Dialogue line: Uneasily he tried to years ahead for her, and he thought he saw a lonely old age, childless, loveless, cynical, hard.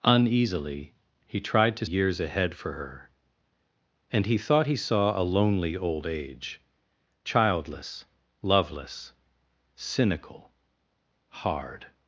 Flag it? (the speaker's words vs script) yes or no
no